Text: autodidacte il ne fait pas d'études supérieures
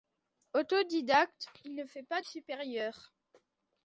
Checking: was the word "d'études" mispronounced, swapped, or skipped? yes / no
yes